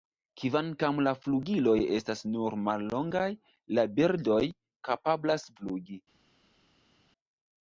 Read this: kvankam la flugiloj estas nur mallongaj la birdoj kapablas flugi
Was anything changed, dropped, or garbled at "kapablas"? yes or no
no